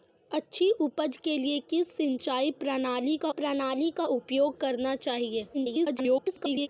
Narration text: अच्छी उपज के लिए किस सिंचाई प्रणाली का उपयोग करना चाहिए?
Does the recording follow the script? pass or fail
fail